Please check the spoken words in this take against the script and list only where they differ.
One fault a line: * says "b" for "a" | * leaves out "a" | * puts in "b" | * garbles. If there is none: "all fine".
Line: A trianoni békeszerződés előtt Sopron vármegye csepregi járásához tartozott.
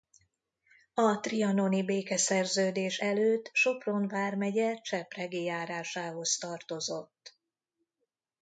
all fine